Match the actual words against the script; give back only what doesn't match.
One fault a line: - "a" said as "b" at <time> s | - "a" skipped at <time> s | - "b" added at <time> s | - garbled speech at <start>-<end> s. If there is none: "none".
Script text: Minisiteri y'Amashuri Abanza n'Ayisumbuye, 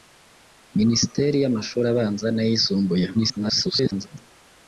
- garbled speech at 3.1-4.1 s